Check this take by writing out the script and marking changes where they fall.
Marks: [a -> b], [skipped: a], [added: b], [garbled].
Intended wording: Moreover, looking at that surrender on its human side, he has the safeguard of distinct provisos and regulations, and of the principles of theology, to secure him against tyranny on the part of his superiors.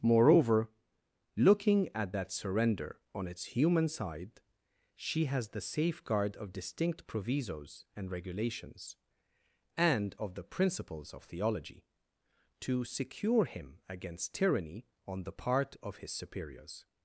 Moreover, looking at that surrender on its human side, [he -> she] has the safeguard of distinct provisos and regulations, and of the principles of theology, to secure him against tyranny on the part of his superiors.